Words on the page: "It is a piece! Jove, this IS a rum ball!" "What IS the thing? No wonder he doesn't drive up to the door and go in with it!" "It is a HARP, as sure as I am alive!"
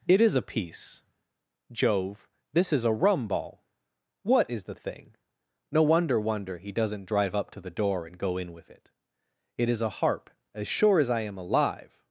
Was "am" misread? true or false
false